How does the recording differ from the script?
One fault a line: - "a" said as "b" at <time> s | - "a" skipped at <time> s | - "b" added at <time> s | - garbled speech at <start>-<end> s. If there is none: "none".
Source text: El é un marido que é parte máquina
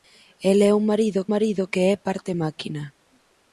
- "marido" added at 1.3 s